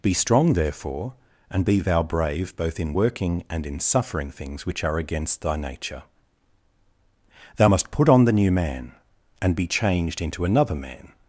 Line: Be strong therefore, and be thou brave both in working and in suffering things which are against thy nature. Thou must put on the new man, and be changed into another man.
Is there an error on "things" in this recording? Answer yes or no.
no